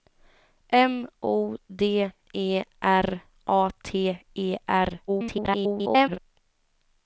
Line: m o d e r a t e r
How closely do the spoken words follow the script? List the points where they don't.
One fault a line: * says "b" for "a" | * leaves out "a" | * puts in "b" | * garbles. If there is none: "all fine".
* garbles